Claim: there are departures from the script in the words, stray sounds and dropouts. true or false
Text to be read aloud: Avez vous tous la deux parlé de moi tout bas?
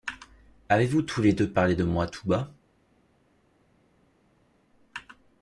true